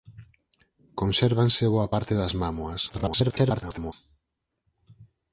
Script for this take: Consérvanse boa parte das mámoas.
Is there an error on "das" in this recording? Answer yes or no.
no